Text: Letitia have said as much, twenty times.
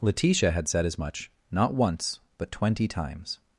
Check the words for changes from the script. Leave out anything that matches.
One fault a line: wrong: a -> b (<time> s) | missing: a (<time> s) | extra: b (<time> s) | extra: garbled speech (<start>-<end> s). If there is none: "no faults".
wrong: have -> had (0.5 s)
extra: not once but (1.5 s)